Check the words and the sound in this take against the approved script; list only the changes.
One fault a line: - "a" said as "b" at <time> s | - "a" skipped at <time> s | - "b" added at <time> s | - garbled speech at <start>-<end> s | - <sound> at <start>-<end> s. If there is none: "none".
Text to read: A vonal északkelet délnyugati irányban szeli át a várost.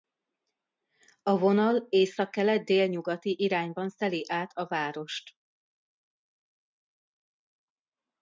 none